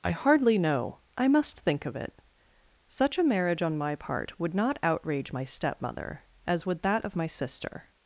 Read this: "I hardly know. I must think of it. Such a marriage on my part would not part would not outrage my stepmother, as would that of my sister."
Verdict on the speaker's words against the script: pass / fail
fail